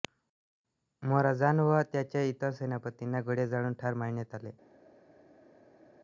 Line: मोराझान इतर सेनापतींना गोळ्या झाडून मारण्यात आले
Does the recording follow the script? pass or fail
fail